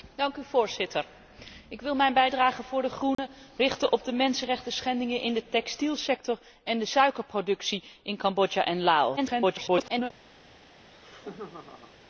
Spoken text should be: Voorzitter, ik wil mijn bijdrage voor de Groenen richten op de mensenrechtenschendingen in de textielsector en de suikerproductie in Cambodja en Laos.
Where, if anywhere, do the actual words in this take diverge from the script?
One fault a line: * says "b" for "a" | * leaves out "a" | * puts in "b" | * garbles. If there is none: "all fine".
* garbles